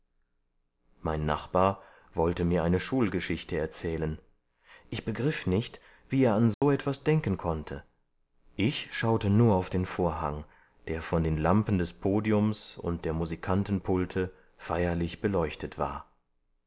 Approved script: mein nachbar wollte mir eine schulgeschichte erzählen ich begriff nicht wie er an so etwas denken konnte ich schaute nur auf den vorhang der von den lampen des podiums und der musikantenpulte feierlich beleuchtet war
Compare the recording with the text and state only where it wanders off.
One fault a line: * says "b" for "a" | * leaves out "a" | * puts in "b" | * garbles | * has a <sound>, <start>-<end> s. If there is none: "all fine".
* has a dropout, 6.5-6.6 s